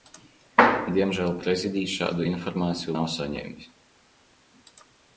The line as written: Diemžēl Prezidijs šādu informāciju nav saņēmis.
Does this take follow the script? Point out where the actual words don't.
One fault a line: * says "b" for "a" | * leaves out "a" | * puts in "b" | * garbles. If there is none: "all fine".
all fine